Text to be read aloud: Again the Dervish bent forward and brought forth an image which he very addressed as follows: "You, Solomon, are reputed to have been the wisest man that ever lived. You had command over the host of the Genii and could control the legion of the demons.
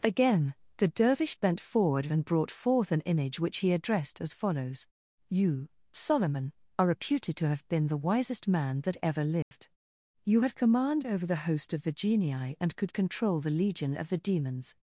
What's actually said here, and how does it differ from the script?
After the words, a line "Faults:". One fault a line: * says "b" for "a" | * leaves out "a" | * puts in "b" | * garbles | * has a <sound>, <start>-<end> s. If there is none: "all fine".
Again the Dervish bent forward and brought forth an image which he addressed as follows: "You, Solomon, are reputed to have been the wisest man that ever lived. You had command over the host of the Genii and could control the legion of the demons.
Faults:
* leaves out "very"
* has a dropout, 9.4-9.5 s